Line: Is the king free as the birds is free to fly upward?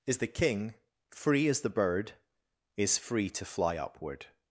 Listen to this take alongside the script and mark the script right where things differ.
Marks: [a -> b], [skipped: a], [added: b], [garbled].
Is the king free as the [birds -> bird] is free to fly upward?